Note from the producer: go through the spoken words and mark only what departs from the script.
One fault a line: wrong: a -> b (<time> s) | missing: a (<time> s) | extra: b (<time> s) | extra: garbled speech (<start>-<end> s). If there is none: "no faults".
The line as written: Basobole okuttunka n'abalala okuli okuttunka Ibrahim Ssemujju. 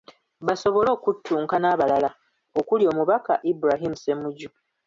wrong: okuttunka -> omubaka (2.9 s)